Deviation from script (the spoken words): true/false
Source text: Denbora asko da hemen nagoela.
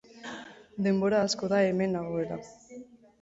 false